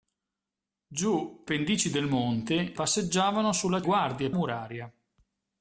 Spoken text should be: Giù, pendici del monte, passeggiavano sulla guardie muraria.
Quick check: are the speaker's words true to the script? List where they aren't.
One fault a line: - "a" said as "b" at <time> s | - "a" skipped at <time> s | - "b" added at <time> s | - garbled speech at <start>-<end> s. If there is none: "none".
none